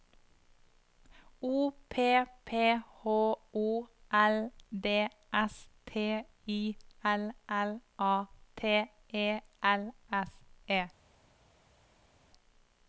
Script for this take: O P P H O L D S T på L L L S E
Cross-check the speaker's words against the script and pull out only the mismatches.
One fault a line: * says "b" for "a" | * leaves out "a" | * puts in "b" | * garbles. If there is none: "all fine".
* says "I" for "på"
* puts in "A T E"